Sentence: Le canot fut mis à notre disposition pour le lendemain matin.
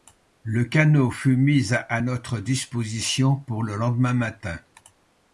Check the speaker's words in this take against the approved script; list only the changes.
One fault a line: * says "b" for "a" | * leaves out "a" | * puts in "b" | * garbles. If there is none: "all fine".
all fine